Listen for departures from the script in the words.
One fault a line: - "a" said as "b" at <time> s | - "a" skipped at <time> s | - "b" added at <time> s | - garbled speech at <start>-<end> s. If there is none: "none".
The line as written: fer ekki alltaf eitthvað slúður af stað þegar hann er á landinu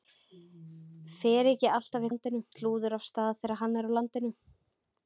- "eitthvað" said as "landinu" at 2.1 s